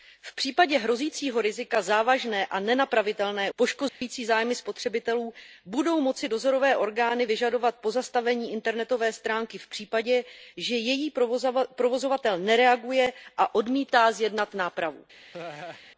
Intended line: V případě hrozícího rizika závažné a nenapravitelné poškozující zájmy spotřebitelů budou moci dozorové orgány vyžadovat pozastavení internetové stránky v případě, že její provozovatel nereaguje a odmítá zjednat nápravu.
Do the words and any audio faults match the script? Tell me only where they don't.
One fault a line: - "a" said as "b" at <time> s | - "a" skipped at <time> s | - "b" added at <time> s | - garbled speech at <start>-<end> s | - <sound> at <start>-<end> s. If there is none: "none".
- dropout at 3.9-4.0 s
- laugh at 15.3-15.8 s